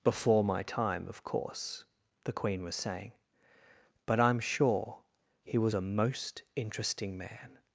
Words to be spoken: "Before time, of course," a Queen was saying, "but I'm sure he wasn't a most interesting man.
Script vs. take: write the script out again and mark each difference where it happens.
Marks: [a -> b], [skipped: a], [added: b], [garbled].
"Before [added: my] time, of course," [a -> the] Queen was saying, "but I'm sure he [wasn't -> was] a most interesting man.